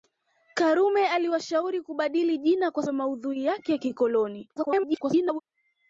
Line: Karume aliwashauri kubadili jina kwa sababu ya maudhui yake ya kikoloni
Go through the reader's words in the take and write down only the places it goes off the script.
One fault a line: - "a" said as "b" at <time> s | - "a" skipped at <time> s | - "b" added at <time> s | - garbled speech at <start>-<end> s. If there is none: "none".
- "sababu" skipped at 2.9 s
- garbled speech at 4.6-5.4 s